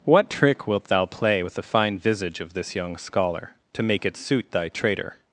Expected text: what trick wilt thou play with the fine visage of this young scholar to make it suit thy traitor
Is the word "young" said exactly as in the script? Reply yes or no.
yes